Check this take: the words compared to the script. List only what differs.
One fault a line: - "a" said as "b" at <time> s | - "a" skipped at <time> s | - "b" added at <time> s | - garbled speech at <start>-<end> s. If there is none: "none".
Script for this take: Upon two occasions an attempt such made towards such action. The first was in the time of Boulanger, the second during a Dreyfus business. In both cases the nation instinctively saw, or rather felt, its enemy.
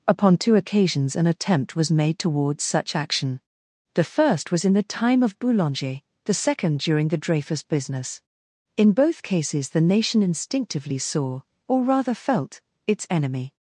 - "such" said as "was" at 1.8 s
- "a" said as "the" at 7.1 s